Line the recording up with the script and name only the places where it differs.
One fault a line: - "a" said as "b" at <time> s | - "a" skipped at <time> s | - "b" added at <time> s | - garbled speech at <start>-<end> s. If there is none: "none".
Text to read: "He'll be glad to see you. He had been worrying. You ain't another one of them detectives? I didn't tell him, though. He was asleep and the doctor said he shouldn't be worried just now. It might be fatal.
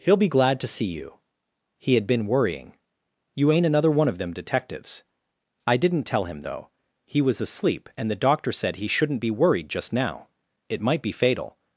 none